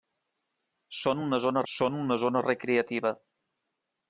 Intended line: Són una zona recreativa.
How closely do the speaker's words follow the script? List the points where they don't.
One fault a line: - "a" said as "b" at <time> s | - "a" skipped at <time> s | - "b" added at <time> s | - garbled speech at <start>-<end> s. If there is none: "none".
- "són una zona" added at 1.7 s